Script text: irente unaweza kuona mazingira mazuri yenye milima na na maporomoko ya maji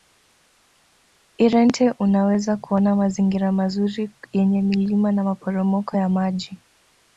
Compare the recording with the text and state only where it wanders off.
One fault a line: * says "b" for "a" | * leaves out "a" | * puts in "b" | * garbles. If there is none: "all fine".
* leaves out "na"